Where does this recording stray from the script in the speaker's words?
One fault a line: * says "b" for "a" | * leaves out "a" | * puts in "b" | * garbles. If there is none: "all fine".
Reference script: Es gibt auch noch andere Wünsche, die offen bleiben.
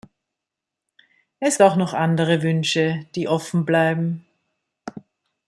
* leaves out "gibt"